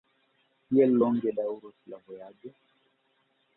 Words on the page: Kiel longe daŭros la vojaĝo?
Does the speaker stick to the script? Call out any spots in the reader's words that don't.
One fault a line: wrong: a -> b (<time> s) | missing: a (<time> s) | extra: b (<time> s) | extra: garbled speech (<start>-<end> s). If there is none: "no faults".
no faults